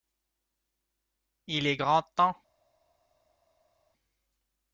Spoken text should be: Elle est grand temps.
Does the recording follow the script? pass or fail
fail